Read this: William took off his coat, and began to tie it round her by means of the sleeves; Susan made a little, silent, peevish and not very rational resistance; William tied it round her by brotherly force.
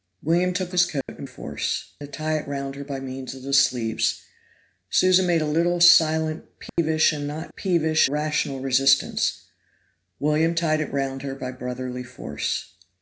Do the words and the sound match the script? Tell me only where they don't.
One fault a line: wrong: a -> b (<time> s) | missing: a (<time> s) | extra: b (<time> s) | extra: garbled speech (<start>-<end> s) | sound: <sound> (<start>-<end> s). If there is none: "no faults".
missing: off (0.7 s)
sound: dropout (1.0-1.1 s)
wrong: began -> force (1.2 s)
sound: dropout (6.7-6.8 s)
wrong: very -> peevish (7.5 s)